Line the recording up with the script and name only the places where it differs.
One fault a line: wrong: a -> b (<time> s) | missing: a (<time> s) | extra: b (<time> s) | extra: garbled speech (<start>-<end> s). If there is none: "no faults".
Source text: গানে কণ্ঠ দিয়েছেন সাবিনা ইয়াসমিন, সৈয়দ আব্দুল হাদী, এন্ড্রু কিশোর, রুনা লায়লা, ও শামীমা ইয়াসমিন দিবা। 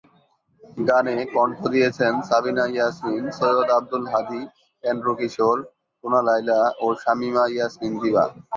no faults